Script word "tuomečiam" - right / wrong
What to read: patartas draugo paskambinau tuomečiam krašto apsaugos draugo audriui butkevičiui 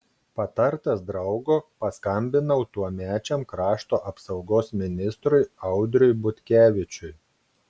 right